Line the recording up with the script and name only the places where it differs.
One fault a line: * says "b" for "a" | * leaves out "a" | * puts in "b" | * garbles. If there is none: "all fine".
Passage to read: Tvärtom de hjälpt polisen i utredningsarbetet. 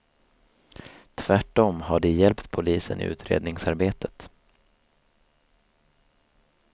* puts in "har"